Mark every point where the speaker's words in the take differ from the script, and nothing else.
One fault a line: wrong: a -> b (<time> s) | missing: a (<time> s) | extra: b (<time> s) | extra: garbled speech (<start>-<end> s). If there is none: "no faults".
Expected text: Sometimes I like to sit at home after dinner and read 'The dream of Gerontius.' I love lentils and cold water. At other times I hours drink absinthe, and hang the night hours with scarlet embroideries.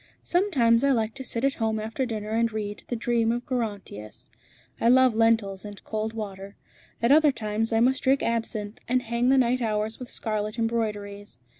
wrong: hours -> must (7.8 s)